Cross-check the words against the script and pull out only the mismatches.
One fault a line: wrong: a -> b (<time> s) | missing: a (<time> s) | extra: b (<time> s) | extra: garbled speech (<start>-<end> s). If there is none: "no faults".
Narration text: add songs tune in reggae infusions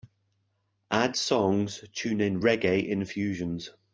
no faults